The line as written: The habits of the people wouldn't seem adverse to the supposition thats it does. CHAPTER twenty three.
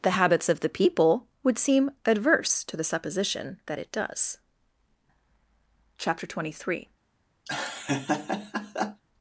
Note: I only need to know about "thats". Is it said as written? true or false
false